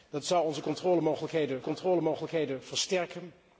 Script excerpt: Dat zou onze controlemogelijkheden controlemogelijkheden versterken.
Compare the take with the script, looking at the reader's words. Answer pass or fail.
pass